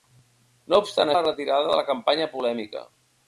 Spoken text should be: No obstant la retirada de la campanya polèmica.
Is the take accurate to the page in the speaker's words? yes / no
yes